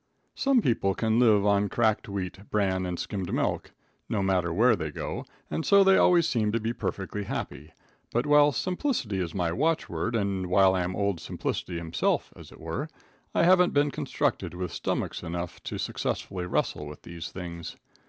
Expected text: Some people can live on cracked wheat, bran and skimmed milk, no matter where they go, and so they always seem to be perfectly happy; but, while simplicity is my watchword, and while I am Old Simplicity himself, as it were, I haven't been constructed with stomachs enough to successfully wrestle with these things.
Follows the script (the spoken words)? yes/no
yes